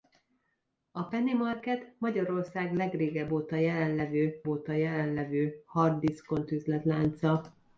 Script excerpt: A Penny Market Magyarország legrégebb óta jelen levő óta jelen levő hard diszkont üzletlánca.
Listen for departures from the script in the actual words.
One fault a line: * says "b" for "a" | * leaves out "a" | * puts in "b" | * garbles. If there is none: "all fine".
all fine